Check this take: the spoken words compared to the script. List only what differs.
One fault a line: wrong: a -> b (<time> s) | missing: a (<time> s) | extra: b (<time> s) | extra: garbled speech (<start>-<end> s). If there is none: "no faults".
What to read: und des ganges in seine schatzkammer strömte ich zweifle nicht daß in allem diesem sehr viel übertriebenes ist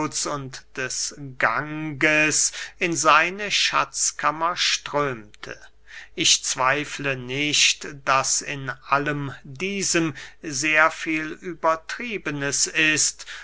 no faults